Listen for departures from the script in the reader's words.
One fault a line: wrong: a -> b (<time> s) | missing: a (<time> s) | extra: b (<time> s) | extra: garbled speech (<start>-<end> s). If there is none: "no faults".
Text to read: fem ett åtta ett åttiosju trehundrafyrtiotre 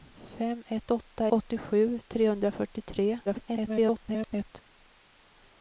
missing: ett (1.3 s)
extra: garbled speech (3.3-4.6 s)